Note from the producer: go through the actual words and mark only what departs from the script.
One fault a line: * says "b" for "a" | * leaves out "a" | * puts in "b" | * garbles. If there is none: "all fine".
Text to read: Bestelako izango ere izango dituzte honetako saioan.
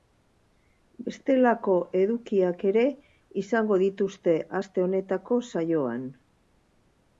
* says "edukiak" for "izango"
* puts in "aste"